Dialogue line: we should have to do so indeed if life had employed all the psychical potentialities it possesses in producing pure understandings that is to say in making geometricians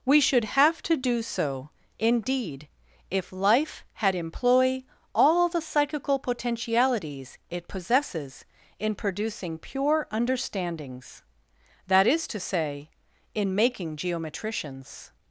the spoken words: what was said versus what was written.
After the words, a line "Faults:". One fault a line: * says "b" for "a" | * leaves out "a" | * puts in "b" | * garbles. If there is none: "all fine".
we should have to do so indeed if life had employ all the psychical potentialities it possesses in producing pure understandings that is to say in making geometricians
Faults:
* says "employ" for "employed"